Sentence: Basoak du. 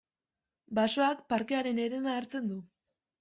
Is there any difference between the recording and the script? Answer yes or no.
yes